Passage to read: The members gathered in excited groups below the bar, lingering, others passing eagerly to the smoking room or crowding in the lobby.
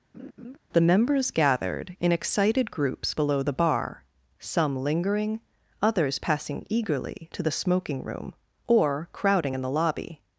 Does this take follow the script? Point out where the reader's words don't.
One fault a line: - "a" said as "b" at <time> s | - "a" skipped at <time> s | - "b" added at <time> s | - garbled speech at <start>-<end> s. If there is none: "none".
- "some" added at 4.4 s